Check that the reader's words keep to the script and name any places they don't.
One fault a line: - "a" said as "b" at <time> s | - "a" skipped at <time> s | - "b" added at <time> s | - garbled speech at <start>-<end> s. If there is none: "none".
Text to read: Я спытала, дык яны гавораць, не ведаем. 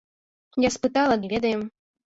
- "дык яны гавораць" skipped at 1.2 s